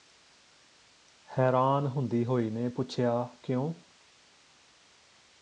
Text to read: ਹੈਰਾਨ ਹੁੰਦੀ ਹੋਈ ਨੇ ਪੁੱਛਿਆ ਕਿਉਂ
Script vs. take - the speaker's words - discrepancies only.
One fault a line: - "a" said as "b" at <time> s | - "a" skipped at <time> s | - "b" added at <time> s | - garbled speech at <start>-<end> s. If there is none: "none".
none